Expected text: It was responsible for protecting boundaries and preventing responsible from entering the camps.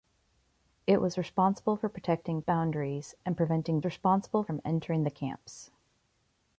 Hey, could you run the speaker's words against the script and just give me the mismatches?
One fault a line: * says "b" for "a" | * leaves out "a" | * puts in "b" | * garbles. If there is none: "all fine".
all fine